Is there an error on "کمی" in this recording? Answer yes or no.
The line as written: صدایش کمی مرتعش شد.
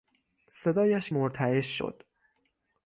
yes